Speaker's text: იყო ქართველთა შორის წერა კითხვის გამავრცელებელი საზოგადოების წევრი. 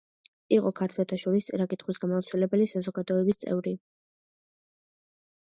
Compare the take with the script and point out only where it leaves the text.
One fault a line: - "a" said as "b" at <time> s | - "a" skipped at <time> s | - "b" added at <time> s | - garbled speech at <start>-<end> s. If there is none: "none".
none